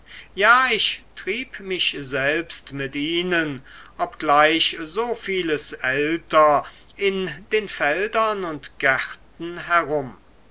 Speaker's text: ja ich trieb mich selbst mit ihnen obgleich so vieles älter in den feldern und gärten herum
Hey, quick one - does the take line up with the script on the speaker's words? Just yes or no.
yes